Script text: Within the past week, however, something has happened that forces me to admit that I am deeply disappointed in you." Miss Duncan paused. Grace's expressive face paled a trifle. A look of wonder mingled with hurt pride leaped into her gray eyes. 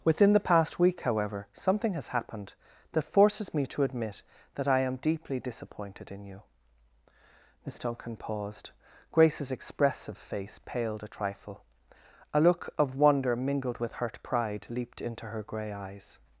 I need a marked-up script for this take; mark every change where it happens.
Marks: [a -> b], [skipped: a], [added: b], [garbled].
Within the past week, however, something has happened that forces me to admit that I am deeply disappointed in you." Miss Duncan paused. Grace's expressive face paled a trifle. A look of wonder mingled with hurt pride leaped into her gray eyes.